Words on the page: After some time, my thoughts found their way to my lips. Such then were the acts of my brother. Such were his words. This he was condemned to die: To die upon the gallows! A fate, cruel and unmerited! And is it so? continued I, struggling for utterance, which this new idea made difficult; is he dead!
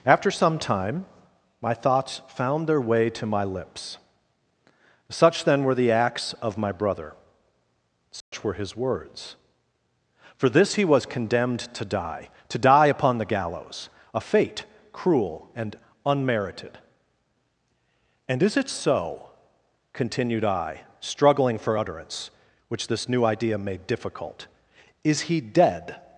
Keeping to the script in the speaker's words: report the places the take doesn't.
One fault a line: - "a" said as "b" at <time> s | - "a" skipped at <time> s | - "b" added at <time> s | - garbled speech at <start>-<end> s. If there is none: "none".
- "For" added at 10.3 s